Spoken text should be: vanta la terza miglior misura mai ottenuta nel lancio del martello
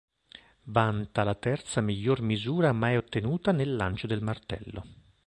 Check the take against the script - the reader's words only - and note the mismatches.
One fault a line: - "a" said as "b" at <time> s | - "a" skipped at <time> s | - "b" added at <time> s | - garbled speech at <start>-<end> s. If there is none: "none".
none